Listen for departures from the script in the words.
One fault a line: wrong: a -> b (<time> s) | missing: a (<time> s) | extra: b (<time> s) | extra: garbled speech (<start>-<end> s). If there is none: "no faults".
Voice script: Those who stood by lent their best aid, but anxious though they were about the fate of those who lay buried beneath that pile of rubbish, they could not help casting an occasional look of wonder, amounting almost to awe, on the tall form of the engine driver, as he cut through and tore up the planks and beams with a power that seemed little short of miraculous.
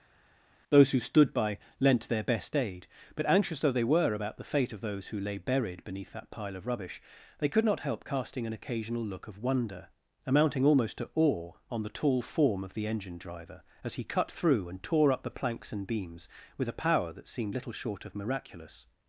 no faults